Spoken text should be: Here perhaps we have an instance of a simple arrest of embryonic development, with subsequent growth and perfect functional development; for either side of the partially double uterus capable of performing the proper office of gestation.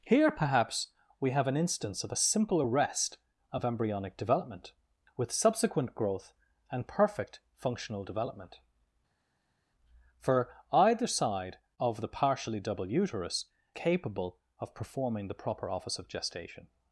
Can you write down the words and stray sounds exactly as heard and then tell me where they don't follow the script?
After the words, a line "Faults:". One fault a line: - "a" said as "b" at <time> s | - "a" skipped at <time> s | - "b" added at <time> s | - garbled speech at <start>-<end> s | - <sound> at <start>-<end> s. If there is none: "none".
Here perhaps we have an instance of a simple arrest of embryonic development, with subsequent growth and perfect functional development; for either side of the partially double uterus capable of performing the proper office of gestation.
Faults:
none